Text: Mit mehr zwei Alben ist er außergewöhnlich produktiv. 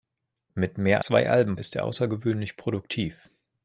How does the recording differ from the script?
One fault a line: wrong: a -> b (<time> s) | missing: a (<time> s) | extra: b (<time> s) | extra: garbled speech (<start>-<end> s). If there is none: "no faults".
no faults